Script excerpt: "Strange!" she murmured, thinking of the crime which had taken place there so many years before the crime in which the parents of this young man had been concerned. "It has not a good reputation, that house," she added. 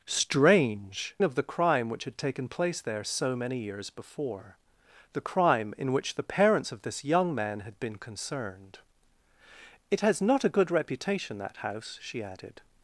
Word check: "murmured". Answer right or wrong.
wrong